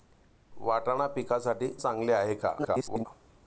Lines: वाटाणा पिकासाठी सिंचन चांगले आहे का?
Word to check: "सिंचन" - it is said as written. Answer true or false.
false